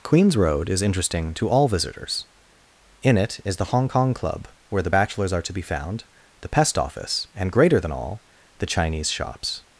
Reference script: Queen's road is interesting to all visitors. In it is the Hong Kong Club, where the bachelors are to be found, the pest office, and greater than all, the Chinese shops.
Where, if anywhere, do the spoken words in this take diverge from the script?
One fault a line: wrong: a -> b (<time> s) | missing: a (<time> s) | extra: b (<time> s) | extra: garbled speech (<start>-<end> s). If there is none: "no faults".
no faults